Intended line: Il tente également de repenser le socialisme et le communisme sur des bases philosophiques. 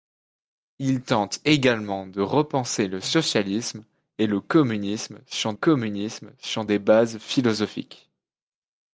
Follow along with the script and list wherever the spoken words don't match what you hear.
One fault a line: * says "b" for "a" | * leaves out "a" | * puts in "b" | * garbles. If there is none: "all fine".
* puts in "communisme sur"